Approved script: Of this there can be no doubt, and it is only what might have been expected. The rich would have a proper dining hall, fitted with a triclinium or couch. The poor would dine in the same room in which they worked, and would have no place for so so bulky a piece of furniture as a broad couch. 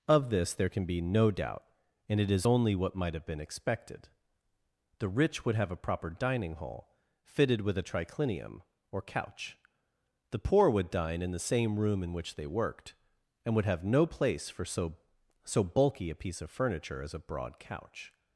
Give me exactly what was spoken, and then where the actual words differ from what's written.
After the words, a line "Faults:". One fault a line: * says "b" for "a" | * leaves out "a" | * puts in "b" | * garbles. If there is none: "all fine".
Of this there can be no doubt, and it is only what might have been expected. The rich would have a proper dining hall, fitted with a triclinium or couch. The poor would dine in the same room in which they worked, and would have no place for so so bulky a piece of furniture as a broad couch.
Faults:
all fine